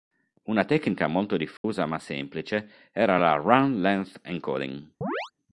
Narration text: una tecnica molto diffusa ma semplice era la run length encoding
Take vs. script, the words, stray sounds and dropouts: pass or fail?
fail